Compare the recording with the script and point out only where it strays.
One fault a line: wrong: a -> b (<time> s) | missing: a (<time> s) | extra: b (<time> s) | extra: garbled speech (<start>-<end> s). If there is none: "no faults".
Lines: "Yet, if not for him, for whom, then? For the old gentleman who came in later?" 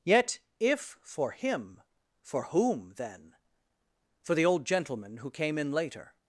missing: not (1.0 s)